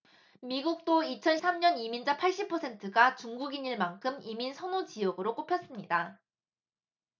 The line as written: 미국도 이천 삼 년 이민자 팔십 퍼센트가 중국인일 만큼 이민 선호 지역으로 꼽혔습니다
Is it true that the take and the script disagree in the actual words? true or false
false